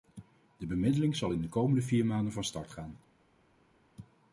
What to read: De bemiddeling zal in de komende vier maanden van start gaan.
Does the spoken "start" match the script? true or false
true